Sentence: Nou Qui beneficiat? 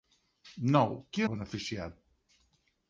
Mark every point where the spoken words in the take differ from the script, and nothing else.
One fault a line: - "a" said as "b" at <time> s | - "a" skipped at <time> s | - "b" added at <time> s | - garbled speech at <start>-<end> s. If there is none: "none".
none